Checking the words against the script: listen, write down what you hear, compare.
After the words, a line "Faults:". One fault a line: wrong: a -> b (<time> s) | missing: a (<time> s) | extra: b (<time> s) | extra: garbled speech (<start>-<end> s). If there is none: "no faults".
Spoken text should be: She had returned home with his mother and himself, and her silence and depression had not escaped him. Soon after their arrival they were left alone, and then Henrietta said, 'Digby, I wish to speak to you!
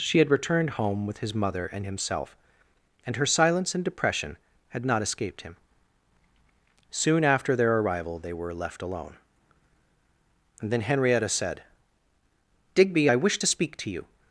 She had returned home with his mother and himself, and her silence and depression had not escaped him. Soon after their arrival they were left alone, and then Henrietta said, 'Digby, I wish to speak to you!
Faults:
no faults